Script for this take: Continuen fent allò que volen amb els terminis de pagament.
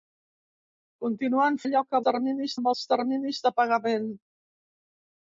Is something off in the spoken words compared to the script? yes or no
yes